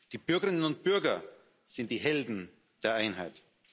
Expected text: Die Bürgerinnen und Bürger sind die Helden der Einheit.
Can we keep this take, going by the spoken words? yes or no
yes